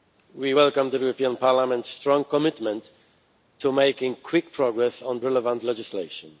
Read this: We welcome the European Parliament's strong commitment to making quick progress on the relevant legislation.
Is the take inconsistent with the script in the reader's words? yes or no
yes